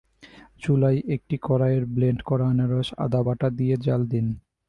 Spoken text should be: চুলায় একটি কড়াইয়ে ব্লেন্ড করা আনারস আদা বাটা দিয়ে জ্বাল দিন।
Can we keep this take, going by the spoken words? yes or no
yes